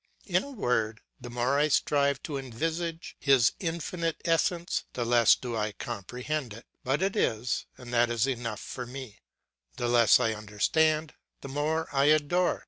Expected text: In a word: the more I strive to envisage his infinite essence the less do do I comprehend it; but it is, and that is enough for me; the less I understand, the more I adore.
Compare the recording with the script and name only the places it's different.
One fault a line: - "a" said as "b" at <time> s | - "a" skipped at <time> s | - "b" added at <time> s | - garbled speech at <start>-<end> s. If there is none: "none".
- "do" skipped at 5.6 s